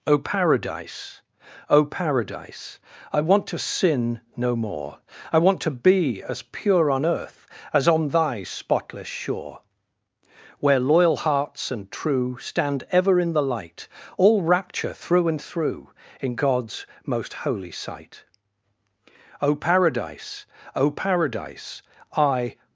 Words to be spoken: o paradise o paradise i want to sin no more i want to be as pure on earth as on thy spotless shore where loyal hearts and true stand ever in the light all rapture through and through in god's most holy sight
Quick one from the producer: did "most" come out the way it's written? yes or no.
yes